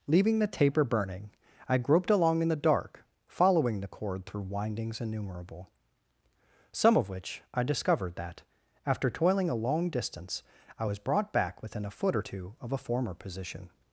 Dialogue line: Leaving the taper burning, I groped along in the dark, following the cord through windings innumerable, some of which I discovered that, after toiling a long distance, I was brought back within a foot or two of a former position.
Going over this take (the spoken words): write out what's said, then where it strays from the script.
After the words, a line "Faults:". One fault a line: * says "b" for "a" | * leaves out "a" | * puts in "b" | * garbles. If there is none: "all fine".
Leaving the taper burning, I groped along in the dark, following the cord through windings innumerable, some of which I discovered that, after toiling a long distance, I was brought back within a foot or two of a former position.
Faults:
all fine